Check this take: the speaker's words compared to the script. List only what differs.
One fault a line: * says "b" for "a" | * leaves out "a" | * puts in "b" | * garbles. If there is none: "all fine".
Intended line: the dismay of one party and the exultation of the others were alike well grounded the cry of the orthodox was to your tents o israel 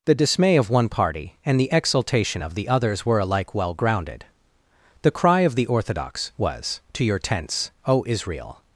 all fine